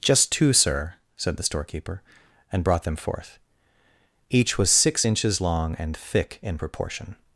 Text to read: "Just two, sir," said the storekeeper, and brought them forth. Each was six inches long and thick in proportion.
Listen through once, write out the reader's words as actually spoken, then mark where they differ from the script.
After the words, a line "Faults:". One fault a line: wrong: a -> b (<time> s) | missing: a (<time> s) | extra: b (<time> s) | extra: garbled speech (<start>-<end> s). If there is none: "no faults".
"Just two, sir," said the storekeeper, and brought them forth. Each was six inches long and thick in proportion.
Faults:
no faults